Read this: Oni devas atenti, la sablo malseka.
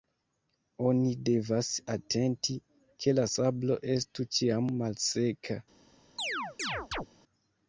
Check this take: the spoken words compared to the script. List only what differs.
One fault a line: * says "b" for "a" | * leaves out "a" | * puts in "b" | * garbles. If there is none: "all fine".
* puts in "ke"
* puts in "estu ĉiam"